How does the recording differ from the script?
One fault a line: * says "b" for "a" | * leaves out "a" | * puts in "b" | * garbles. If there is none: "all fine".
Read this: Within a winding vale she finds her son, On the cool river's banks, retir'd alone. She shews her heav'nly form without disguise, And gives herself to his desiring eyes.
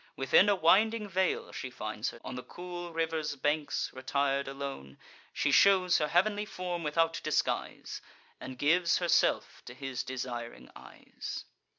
* leaves out "son"